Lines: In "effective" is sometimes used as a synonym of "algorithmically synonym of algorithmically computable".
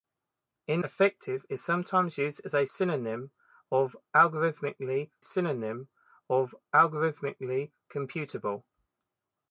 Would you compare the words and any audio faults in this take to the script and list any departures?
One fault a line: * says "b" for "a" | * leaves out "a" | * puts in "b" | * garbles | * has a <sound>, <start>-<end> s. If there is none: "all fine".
all fine